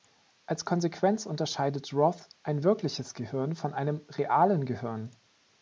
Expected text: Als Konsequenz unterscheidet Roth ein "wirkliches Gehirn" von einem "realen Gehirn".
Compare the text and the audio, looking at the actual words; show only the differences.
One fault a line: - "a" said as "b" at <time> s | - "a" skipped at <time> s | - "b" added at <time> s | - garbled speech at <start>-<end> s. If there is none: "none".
none